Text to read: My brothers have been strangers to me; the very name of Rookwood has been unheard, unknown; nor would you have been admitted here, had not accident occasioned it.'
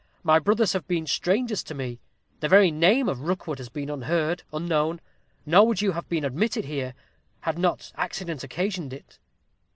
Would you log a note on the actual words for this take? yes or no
no